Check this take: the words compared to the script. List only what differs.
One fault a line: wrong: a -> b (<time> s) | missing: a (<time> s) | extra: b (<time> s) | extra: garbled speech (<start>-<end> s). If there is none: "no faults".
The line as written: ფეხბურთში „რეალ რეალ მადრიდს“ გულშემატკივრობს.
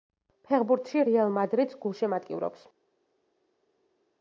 missing: რეალ (1.4 s)